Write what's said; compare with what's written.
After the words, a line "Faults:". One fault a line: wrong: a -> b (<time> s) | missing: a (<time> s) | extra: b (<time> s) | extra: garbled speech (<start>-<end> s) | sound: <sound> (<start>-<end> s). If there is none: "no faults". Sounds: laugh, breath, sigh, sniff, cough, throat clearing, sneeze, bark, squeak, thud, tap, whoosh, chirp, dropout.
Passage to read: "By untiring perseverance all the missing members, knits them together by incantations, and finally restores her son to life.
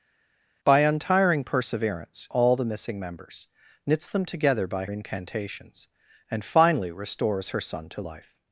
"By untiring perseverance all the missing members, knits them together by incantations, and finally restores her son to life.
Faults:
no faults